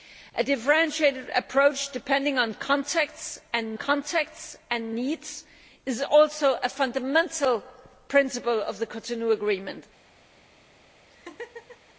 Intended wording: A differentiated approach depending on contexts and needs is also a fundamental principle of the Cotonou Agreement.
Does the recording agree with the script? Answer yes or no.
no